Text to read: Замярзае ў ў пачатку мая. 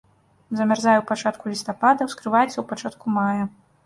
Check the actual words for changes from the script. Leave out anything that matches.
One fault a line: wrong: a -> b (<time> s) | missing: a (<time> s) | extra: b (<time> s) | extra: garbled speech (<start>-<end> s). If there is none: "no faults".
extra: пачатку лістапада ускрываецца (1.1 s)